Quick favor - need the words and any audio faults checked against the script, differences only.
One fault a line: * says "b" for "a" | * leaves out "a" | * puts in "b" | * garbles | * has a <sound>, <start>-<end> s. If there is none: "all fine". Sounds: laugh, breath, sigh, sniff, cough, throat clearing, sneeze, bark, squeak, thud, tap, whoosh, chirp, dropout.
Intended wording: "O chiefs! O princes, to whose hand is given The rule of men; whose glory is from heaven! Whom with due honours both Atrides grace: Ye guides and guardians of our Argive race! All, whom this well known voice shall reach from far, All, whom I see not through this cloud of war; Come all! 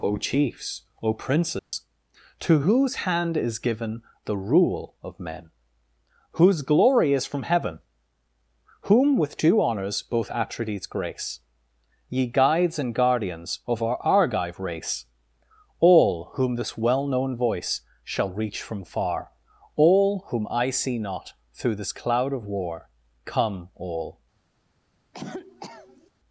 * has a dropout, 1.6-1.7 s
* has a cough, 25.1-26.1 s